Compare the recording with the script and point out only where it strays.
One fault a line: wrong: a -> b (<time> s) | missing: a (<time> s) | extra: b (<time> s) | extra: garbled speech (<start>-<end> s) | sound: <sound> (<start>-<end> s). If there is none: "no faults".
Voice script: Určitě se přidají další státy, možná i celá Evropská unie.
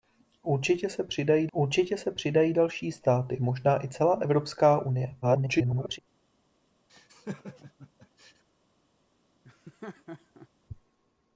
extra: určitě se přidají (1.5 s)
extra: garbled speech (5.2-6.0 s)
sound: laugh (6.9-8.4 s)
sound: laugh (9.4-10.5 s)